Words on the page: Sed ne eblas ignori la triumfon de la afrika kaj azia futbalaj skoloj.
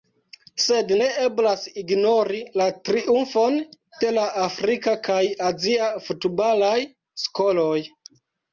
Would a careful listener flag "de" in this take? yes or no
no